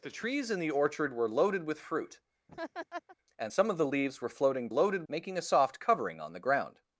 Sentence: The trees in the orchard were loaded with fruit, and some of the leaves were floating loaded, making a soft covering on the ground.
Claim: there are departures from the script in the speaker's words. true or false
false